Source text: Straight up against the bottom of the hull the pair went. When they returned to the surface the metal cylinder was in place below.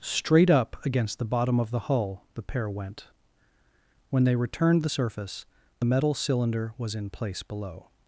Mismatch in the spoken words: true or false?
true